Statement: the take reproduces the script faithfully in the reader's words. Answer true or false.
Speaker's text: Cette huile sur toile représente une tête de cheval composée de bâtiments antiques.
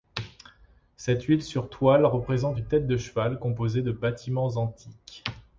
true